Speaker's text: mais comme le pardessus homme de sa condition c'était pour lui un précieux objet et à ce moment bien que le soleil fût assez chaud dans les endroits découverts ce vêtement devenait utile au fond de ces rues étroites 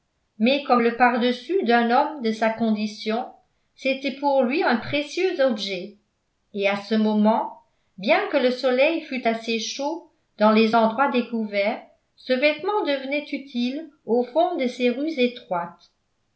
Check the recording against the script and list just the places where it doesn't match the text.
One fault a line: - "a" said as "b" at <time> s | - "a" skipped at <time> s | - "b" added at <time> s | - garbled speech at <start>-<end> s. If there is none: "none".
- "d'un" added at 1.6 s